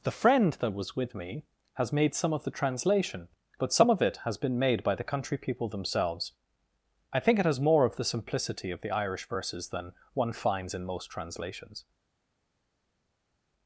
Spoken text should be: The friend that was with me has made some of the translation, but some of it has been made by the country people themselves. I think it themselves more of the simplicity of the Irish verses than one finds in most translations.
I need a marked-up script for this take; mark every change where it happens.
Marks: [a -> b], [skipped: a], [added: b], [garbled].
The friend that was with me has made some of the translation, but some of it has been made by the country people themselves. I think it [themselves -> has] more of the simplicity of the Irish verses than one finds in most translations.